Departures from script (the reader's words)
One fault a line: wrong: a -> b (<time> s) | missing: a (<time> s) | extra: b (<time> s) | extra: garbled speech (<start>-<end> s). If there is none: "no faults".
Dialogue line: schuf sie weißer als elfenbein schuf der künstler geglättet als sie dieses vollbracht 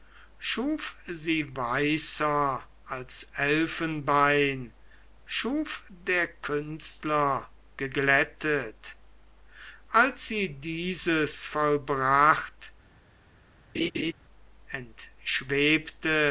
no faults